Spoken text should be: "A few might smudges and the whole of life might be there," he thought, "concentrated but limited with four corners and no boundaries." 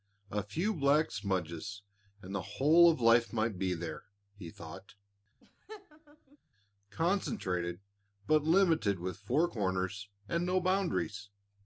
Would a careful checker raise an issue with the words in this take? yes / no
yes